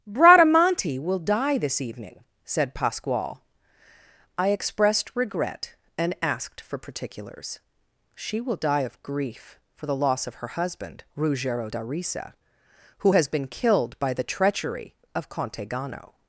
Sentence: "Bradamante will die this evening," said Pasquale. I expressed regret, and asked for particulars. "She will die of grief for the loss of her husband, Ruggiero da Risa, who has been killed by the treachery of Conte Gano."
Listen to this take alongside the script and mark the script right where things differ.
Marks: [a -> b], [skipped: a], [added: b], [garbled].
"Bradamante will die this evening," said Pasquale. I expressed regret, and asked for particulars. "She will die of grief for the loss of her husband, Ruggiero da Risa, who has been killed by the treachery of Conte Gano."